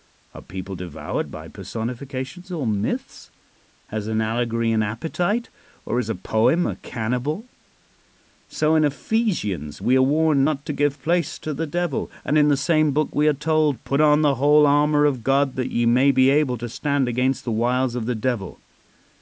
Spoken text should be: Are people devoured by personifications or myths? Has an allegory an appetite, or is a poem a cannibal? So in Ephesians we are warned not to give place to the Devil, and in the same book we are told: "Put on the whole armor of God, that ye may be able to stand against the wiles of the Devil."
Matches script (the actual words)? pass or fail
pass